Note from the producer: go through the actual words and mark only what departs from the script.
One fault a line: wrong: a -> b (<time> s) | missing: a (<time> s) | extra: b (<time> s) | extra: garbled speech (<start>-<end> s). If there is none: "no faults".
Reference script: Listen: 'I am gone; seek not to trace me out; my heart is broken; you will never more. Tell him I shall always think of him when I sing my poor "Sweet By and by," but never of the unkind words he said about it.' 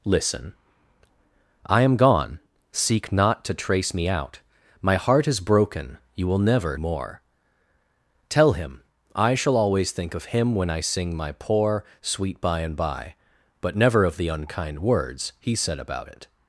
no faults